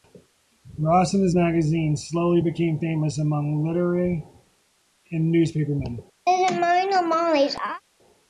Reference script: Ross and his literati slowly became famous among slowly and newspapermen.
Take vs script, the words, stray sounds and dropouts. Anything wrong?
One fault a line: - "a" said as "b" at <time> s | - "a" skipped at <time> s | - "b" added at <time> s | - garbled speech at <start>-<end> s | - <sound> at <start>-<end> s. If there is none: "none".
- "literati" said as "magazine" at 1.3 s
- "slowly" said as "literati" at 3.6 s
- laugh at 6.3-7.8 s